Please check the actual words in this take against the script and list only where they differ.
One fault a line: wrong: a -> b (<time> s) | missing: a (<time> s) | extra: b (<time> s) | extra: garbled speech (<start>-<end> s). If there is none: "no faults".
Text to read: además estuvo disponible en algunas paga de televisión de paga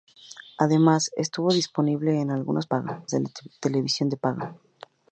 no faults